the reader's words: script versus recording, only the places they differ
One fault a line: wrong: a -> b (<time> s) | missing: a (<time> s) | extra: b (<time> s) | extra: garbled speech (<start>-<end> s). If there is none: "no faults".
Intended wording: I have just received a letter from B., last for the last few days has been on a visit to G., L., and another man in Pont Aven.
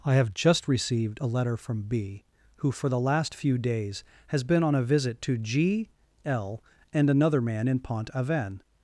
wrong: last -> who (2.6 s)